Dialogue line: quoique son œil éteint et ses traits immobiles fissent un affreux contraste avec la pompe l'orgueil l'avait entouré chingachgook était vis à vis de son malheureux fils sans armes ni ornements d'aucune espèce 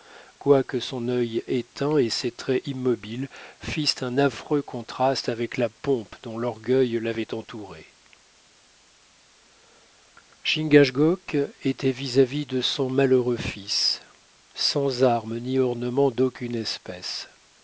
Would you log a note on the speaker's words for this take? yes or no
yes